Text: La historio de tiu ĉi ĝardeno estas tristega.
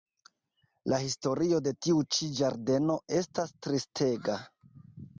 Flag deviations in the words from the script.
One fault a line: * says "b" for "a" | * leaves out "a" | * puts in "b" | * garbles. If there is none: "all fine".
all fine